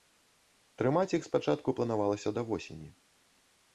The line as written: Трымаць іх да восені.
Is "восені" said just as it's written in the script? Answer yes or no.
yes